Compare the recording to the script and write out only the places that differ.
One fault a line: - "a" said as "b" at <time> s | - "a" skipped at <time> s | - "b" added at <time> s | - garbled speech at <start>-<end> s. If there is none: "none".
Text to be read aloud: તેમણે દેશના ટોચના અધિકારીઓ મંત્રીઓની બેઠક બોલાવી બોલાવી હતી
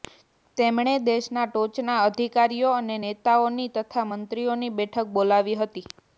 - "અને નેતાઓની તથા" added at 2.7 s
- "બોલાવી" skipped at 5.6 s